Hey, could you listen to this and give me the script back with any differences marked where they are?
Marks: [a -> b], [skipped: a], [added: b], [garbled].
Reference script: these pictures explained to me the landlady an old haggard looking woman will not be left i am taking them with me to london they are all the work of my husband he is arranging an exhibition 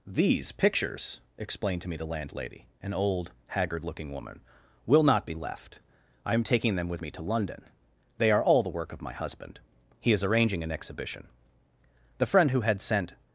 these pictures explained to me the landlady an old haggard looking woman will not be left i am taking them with me to london they are all the work of my husband he is arranging an exhibition [added: the friend who had sent]